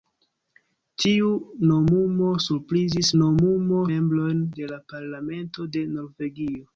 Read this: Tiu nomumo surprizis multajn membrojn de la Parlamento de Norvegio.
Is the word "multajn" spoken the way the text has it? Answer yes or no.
no